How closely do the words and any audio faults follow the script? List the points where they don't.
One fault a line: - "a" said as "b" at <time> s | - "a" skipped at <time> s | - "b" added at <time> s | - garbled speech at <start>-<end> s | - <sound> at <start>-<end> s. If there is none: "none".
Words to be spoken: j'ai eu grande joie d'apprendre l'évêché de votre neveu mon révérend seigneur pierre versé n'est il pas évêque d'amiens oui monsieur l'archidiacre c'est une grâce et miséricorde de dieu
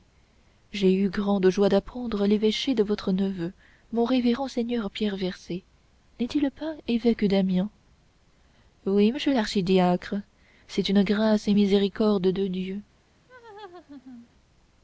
- laugh at 13.3-14.3 s